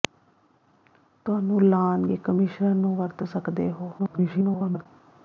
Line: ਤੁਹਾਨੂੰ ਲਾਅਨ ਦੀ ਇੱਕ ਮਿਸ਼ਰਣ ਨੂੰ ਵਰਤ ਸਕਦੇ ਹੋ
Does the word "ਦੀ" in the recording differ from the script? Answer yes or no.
yes